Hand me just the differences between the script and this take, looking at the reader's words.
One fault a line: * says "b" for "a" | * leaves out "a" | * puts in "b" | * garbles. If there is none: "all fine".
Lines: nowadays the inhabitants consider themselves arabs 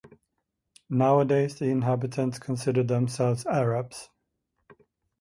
all fine